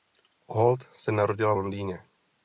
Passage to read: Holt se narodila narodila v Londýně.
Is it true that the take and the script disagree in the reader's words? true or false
true